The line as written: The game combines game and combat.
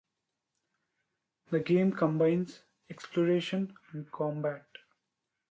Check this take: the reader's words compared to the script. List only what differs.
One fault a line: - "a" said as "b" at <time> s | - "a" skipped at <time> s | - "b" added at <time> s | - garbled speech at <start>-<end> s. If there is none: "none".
- "game" said as "exploration" at 2.9 s